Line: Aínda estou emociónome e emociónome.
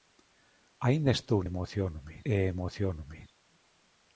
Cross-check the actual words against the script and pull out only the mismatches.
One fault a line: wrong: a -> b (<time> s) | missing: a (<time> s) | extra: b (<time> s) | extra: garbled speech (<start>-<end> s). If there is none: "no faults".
no faults